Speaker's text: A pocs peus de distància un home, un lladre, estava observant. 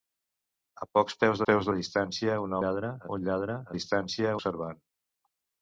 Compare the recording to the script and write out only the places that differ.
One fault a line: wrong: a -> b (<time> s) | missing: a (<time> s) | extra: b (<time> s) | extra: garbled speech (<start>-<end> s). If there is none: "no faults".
extra: peus (1.5 s)
wrong: home -> lladre (2.6 s)
wrong: estava -> distància (3.7 s)